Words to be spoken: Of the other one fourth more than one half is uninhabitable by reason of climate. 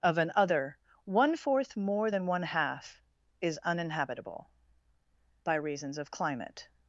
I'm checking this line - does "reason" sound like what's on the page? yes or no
no